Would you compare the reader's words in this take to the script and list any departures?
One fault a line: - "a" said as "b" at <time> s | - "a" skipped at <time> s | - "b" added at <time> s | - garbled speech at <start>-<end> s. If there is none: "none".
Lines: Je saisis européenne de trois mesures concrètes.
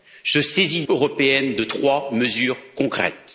none